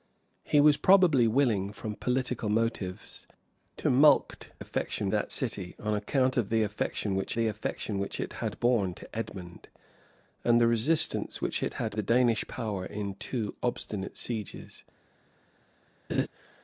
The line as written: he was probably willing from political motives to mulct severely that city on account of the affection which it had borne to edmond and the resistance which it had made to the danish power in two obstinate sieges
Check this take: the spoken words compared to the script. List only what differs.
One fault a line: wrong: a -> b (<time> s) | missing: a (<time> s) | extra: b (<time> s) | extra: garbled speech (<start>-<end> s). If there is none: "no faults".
wrong: severely -> affection (4.6 s)
extra: the affection which (7.3 s)
missing: made to (12.0 s)